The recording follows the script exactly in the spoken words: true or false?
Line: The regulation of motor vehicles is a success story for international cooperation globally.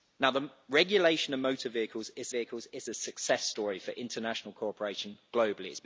false